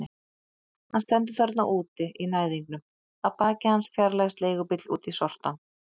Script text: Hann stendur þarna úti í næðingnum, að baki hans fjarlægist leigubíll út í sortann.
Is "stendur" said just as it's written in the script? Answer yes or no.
yes